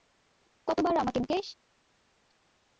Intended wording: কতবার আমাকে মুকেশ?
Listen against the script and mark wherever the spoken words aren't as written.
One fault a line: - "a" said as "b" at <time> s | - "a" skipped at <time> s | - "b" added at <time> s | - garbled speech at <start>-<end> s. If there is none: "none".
none